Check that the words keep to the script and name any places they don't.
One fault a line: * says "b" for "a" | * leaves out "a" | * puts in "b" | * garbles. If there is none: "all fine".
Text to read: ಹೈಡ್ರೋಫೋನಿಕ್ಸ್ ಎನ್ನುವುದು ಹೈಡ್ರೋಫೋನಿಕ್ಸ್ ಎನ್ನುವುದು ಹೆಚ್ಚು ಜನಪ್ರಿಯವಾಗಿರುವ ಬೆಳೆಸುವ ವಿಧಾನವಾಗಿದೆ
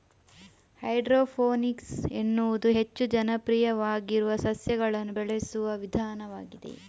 * leaves out "ಹೈಡ್ರೋಫೋನಿಕ್ಸ್ ಎನ್ನುವುದು"
* puts in "ಸಸ್ಯಗಳನ್ನು"